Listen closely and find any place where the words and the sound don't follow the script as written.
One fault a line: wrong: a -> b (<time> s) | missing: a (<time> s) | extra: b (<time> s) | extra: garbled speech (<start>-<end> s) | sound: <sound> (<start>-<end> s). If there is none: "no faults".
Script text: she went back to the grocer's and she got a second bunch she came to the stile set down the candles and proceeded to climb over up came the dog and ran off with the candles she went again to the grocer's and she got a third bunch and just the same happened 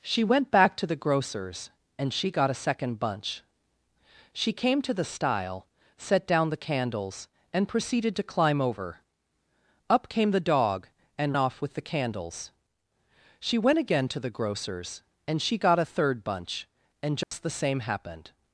missing: ran (11.4 s)
sound: dropout (17.2-17.3 s)